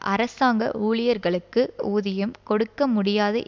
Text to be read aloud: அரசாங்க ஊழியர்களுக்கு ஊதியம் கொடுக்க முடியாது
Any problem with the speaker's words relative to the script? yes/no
no